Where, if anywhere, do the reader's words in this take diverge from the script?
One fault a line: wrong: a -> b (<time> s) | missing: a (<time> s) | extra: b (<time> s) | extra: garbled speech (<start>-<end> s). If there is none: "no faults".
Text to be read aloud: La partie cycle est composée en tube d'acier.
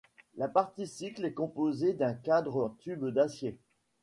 extra: d'un cadre (1.9 s)